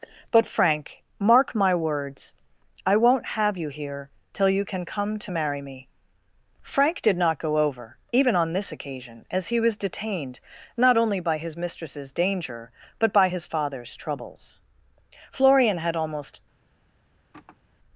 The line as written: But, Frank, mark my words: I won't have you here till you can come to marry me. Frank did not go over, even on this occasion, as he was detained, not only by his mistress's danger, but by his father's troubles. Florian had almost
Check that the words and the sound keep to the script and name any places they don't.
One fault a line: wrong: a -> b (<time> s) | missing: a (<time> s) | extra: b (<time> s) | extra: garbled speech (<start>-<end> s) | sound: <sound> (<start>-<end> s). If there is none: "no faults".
sound: sigh (17.3-17.6 s)